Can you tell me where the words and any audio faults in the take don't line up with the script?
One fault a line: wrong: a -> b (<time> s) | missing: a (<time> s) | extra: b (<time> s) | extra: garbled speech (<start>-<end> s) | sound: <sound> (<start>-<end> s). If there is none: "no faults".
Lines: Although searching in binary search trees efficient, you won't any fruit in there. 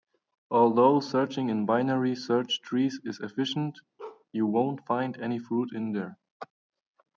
extra: is (3.0 s)
sound: bark (4.0-4.3 s)
extra: find (4.9 s)